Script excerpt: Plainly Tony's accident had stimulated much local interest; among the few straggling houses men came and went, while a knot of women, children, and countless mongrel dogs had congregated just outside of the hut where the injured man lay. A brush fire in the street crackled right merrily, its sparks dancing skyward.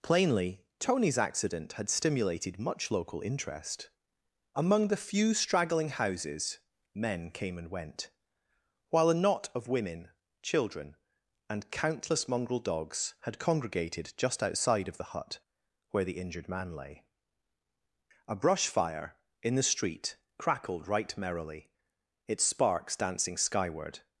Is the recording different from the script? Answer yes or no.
no